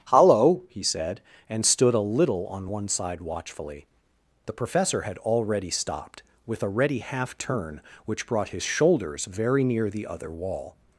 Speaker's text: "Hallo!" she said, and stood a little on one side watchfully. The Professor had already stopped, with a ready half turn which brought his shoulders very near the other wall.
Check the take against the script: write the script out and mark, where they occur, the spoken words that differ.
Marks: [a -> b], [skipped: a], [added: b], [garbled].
"Hallo!" [she -> he] said, and stood a little on one side watchfully. The Professor had already stopped, with a ready half turn which brought his shoulders very near the other wall.